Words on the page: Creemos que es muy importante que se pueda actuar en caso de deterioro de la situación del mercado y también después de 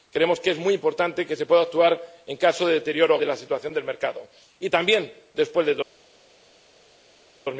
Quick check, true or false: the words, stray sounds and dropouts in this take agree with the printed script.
true